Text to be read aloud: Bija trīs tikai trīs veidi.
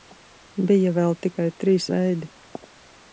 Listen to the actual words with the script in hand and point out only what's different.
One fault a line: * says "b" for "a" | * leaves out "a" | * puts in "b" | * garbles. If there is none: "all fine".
* says "vēl" for "trīs"